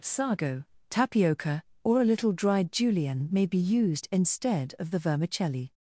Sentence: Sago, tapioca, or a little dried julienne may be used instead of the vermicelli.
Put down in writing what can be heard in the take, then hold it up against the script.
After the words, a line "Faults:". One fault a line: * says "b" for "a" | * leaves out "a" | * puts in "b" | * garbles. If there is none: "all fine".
Sago, tapioca, or a little dried julienne may be used instead of the vermicelli.
Faults:
all fine